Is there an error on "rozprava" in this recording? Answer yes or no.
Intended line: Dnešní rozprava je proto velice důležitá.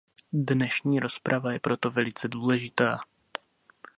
no